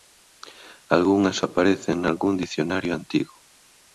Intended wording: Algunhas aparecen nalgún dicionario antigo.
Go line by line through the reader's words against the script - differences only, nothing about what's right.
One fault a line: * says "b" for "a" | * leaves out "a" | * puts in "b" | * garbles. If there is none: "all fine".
all fine